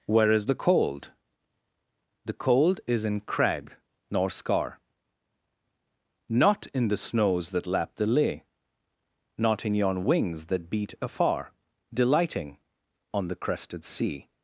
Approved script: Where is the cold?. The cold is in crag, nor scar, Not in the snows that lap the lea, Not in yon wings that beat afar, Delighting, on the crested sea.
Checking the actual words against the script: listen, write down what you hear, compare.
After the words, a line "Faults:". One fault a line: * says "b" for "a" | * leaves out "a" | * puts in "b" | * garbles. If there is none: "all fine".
Where is the cold?. The cold is in crag, nor scar, Not in the snows that lap the lea, Not in yon wings that beat afar, Delighting, on the crested sea.
Faults:
all fine